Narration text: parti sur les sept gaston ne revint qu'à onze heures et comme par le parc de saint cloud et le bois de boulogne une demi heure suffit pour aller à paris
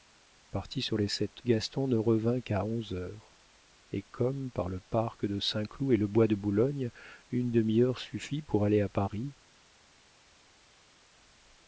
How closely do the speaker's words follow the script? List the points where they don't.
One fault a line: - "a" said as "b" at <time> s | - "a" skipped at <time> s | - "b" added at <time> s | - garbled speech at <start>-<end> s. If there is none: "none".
none